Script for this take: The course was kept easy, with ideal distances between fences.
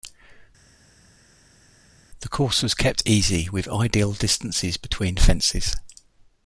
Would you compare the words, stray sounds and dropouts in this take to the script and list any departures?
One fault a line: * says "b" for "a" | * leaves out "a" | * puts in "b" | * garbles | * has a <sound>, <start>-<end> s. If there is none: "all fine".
all fine